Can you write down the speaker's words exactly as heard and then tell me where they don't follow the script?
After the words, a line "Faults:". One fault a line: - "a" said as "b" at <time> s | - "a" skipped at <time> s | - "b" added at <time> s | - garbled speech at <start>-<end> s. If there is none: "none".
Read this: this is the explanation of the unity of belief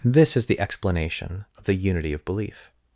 this is the explanation of the unity of belief
Faults:
none